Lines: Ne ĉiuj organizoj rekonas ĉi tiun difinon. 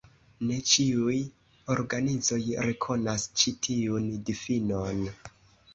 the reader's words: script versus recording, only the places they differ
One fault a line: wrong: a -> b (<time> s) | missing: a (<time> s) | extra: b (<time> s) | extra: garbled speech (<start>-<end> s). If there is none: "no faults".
no faults